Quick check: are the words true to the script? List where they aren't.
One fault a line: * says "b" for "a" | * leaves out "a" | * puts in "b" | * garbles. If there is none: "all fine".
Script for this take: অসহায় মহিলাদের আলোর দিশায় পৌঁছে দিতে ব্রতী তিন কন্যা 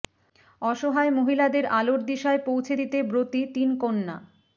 all fine